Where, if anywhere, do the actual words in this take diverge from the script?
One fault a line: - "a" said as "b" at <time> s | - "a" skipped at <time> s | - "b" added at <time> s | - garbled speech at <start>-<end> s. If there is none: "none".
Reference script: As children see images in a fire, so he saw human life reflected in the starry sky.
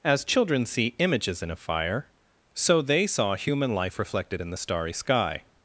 - "he" said as "they" at 2.8 s